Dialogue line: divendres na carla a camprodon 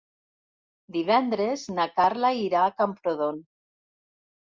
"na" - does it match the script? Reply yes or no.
yes